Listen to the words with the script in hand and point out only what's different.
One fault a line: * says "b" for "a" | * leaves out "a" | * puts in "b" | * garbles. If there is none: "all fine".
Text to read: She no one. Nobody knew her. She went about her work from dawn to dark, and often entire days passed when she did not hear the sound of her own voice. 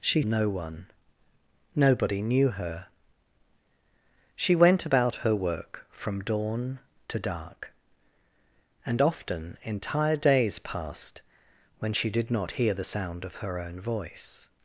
all fine